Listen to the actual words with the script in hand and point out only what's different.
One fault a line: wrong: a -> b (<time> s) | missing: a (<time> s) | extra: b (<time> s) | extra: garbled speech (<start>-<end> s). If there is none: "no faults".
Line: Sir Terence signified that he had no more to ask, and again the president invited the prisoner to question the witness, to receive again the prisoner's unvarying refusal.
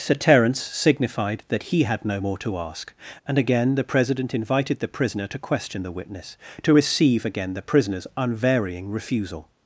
no faults